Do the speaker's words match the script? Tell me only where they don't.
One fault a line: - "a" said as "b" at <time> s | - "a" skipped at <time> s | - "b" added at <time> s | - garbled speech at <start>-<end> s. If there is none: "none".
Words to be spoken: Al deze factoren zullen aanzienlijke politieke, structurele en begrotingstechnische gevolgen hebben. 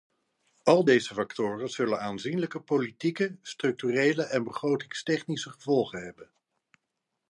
none